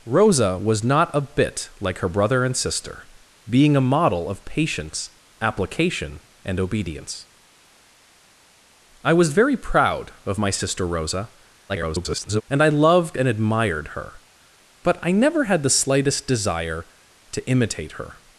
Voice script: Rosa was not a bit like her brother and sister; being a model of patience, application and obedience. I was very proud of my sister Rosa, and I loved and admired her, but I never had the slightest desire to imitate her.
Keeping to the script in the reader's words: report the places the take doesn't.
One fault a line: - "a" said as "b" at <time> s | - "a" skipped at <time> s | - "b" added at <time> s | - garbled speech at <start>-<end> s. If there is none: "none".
- garbled speech at 11.7-12.4 s